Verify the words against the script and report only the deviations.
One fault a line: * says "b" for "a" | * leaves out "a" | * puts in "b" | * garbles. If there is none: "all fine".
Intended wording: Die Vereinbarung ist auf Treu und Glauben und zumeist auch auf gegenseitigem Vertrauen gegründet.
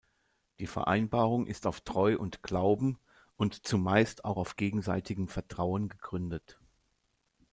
all fine